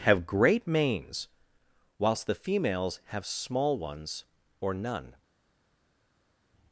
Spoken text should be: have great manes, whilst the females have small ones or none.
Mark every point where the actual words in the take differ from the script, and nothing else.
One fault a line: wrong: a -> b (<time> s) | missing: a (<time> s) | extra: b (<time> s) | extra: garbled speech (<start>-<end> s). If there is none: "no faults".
no faults